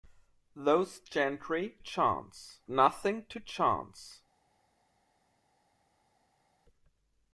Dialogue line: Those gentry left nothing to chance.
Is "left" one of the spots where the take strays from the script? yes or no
yes